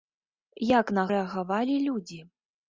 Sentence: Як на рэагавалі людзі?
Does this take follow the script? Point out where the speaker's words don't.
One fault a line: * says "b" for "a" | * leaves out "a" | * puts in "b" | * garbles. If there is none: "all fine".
all fine